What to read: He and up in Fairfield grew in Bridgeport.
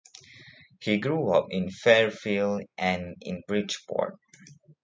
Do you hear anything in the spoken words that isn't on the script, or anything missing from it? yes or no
yes